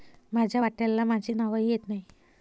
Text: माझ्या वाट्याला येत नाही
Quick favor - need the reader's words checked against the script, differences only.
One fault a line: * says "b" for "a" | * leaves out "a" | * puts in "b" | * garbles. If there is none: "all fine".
* puts in "माझे नावही"